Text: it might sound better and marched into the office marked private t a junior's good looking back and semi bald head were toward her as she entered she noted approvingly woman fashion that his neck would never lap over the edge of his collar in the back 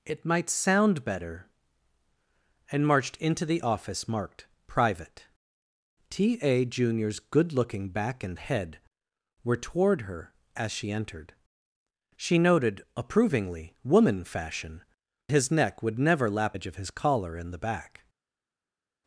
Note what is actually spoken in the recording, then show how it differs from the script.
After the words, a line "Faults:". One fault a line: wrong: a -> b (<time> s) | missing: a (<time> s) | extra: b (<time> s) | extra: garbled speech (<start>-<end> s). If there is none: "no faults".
it might sound better and marched into the office marked private t a junior's good looking back and head were toward her as she entered she noted approvingly woman fashion his neck would never lap edge of his collar in the back
Faults:
missing: semi bald (8.4 s)
missing: that (14.8 s)
missing: over the (16.6 s)